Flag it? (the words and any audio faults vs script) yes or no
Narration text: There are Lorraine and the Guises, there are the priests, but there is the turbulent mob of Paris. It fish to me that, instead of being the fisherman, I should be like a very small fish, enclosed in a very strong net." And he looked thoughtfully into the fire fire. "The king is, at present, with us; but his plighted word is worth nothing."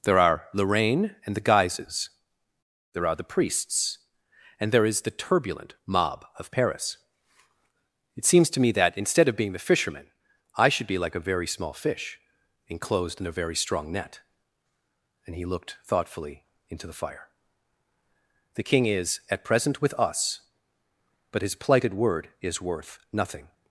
yes